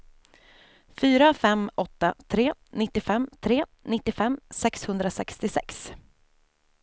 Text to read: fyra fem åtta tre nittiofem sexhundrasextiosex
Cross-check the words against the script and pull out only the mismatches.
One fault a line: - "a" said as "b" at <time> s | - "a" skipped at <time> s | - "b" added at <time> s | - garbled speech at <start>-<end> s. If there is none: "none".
- "tre nittiofem" added at 3.4 s